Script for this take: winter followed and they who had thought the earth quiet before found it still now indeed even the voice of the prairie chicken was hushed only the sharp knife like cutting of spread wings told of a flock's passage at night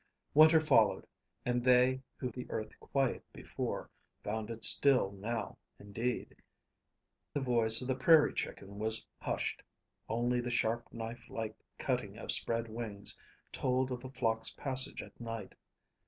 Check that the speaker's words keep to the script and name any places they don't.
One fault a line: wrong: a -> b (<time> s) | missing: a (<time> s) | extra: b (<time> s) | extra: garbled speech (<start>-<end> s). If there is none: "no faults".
missing: had thought (2.3 s)
missing: even (6.4 s)